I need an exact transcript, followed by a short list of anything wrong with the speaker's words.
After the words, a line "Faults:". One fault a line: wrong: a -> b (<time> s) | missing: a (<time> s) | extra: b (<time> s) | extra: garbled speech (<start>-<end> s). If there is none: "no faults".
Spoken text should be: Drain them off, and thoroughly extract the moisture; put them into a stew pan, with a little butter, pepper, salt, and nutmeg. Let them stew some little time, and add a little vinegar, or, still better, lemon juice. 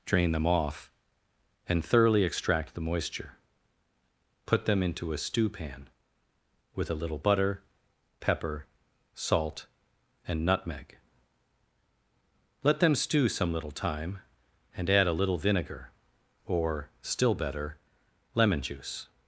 Drain them off, and thoroughly extract the moisture; put them into a stew pan, with a little butter, pepper, salt, and nutmeg. Let them stew some little time, and add a little vinegar, or, still better, lemon juice.
Faults:
no faults